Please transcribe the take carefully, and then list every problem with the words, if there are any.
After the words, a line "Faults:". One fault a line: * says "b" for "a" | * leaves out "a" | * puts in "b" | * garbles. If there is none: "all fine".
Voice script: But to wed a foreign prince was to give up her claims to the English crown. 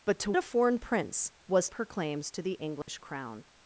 But to a foreign prince was her claims to the English crown.
Faults:
* leaves out "wed"
* leaves out "to give up"